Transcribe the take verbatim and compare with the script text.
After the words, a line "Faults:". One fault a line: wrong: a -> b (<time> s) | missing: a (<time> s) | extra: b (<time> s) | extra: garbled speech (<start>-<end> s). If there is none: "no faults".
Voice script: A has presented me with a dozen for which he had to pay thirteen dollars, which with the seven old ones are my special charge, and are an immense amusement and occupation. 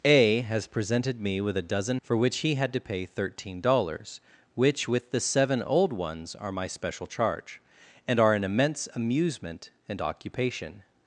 A has presented me with a dozen for which he had to pay thirteen dollars, which with the seven old ones are my special charge, and are an immense amusement and occupation.
Faults:
no faults